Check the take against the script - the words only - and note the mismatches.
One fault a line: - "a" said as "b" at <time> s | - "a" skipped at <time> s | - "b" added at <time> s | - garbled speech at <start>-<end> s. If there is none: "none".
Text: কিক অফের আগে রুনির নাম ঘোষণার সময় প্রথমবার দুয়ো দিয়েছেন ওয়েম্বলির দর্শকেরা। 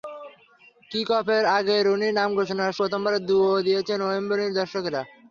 - "সময়" skipped at 2.7 s